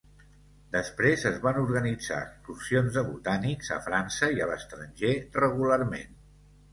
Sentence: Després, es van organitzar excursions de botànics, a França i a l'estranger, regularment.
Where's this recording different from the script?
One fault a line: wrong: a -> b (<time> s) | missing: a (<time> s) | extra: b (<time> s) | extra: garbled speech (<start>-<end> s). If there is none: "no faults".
no faults